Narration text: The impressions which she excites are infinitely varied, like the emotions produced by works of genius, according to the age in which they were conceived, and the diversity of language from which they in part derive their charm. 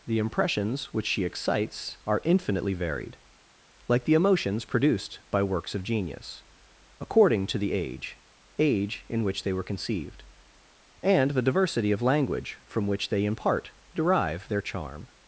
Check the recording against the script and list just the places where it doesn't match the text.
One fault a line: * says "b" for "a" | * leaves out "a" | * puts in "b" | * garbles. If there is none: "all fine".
* puts in "age"